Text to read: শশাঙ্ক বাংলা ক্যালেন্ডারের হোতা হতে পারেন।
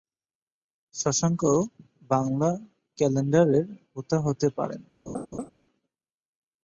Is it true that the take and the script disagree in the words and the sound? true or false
true